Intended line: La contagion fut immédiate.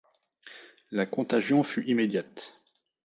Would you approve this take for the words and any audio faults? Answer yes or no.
yes